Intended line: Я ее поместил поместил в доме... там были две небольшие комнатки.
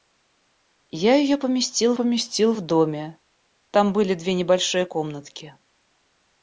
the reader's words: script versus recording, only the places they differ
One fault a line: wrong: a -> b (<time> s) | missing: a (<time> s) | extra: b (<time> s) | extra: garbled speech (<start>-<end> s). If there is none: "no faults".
no faults